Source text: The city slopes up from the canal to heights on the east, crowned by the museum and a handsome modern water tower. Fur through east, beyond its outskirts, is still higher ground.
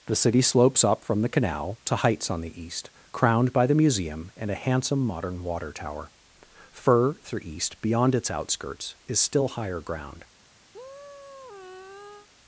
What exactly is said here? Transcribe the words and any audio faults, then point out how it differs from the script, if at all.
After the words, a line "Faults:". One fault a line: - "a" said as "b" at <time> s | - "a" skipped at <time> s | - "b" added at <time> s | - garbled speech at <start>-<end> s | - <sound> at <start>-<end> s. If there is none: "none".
The city slopes up from the canal to heights on the east, crowned by the museum and a handsome modern water tower. Fur through east, beyond its outskirts, is still higher ground.
Faults:
- sigh at 10.7-12.3 s